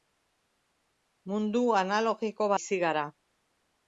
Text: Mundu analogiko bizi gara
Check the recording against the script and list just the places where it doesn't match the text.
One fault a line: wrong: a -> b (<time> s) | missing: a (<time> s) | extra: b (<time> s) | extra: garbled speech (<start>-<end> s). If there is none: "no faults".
no faults